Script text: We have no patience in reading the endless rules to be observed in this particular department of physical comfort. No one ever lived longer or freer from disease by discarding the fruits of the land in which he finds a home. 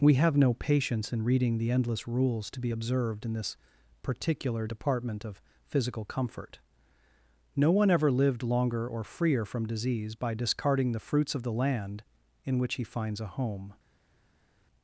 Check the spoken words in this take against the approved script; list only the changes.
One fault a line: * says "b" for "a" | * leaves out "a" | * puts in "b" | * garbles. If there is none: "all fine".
all fine